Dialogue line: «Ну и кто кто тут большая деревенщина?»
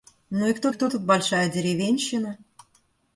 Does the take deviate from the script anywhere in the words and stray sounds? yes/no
no